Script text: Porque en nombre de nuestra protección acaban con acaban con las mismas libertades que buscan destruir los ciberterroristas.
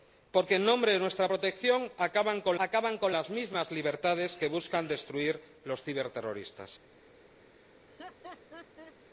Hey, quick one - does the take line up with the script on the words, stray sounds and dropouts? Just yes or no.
no